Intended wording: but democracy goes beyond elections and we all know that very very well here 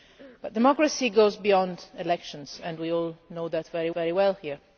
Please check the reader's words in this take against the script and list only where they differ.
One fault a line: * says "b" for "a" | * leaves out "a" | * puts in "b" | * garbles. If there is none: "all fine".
all fine